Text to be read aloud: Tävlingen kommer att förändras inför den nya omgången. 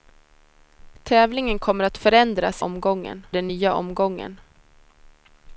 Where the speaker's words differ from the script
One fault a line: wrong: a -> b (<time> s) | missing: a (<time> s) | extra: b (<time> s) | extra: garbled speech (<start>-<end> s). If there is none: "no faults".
wrong: inför -> omgången (2.6 s)